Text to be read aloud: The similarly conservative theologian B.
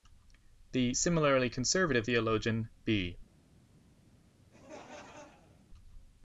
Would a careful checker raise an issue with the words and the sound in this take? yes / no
yes